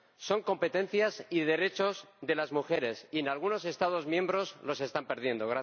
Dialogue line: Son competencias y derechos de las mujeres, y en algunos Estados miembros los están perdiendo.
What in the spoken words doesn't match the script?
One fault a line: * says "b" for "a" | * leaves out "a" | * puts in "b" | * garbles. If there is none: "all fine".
all fine